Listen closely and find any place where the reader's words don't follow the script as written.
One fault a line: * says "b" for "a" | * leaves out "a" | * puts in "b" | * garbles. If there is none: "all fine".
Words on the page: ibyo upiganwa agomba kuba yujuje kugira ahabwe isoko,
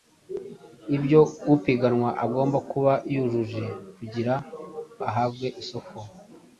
all fine